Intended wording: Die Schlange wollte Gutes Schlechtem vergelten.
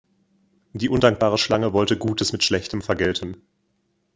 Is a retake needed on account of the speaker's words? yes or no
yes